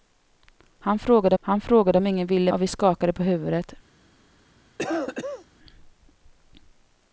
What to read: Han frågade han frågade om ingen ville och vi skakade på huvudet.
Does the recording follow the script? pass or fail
pass